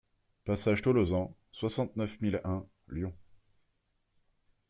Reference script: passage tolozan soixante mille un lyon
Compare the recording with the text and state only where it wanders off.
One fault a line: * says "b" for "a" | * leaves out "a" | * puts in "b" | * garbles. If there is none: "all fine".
* puts in "neuf"